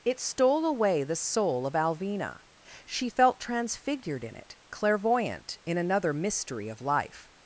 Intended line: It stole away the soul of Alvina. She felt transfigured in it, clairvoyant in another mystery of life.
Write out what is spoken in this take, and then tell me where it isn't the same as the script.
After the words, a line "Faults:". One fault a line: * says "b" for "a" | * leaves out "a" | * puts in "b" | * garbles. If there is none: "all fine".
It stole away the soul of Alvina. She felt transfigured in it, clairvoyant in another mystery of life.
Faults:
all fine